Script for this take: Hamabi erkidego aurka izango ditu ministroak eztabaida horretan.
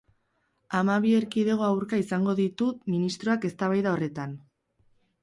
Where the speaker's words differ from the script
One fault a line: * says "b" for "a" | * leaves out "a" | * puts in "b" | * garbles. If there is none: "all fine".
all fine